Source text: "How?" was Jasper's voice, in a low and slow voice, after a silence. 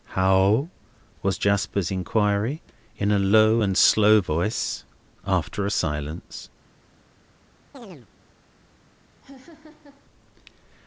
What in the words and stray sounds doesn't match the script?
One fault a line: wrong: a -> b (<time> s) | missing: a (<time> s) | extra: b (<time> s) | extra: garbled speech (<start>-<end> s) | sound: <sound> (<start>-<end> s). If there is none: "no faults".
wrong: voice -> inquiry (1.9 s)
sound: chirp (7.7-8.1 s)
sound: laugh (9.2-10.1 s)